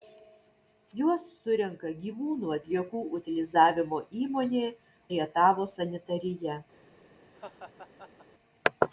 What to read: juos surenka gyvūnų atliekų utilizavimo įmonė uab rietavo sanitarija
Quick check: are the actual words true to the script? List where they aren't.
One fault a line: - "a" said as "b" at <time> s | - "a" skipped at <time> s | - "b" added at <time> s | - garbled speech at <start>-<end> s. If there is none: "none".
- "uab" skipped at 4.6 s